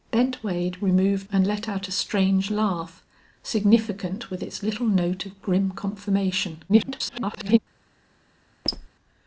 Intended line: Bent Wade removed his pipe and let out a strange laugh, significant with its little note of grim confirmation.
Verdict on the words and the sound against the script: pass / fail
fail